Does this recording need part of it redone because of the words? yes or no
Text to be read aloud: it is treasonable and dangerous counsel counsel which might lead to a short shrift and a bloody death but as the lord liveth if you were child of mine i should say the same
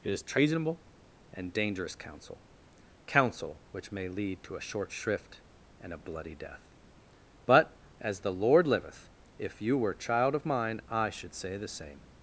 yes